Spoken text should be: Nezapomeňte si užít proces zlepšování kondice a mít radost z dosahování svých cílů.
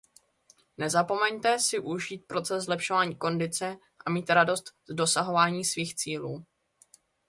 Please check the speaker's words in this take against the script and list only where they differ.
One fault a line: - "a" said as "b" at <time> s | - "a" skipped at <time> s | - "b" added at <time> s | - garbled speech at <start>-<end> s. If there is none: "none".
none